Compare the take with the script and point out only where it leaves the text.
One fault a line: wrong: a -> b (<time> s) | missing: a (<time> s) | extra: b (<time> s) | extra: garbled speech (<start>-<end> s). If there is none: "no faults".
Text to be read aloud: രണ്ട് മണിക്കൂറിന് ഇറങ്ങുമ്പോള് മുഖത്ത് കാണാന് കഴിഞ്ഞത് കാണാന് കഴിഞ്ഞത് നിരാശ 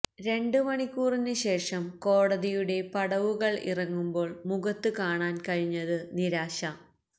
extra: ശേഷം കോടതിയുടെ പടവുകള് (1.4 s)
missing: കാണാന് കഴിഞ്ഞത് (6.0 s)